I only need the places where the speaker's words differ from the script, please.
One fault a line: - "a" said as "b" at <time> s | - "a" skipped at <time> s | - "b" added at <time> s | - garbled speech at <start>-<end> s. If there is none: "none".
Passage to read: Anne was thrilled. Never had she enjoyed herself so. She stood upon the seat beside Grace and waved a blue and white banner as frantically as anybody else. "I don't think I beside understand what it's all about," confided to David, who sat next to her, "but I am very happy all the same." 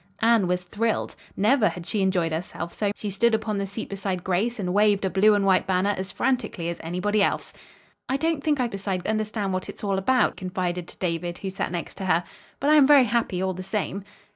none